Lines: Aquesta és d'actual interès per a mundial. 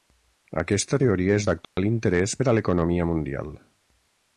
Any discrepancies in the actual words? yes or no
yes